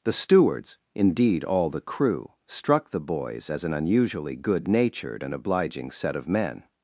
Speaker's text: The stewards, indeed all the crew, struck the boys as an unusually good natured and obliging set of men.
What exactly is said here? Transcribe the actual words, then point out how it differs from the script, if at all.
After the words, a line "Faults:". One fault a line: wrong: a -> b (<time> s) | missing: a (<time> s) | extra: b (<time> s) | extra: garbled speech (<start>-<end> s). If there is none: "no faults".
The stewards, indeed all the crew, struck the boys as an unusually good natured and obliging set of men.
Faults:
no faults